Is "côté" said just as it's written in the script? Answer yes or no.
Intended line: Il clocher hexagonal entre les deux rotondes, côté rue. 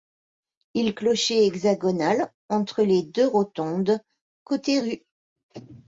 yes